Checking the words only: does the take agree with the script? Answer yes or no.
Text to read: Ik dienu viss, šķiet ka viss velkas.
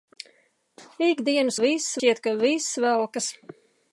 yes